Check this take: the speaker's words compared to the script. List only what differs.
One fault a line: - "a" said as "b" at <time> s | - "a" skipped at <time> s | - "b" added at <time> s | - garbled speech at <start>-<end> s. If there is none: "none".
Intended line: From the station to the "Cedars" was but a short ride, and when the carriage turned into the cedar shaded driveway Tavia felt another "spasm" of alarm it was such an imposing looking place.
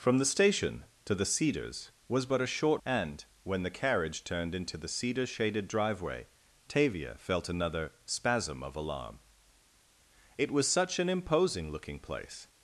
- "ride" skipped at 2.8 s